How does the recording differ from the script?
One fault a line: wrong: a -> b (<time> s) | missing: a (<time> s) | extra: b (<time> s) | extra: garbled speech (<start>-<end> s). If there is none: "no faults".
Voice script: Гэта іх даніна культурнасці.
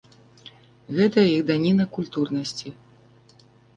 no faults